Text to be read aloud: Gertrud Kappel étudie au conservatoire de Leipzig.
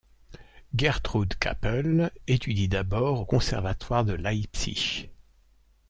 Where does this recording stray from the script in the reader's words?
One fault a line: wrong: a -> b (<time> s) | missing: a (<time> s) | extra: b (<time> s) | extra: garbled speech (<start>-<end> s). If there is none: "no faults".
extra: d'abord (2.7 s)